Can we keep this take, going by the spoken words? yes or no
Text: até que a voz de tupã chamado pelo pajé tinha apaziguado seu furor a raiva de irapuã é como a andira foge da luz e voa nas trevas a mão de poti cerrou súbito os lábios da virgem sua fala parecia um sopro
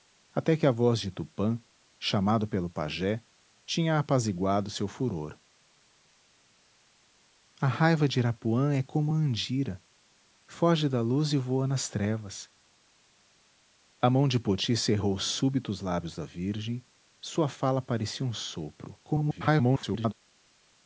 no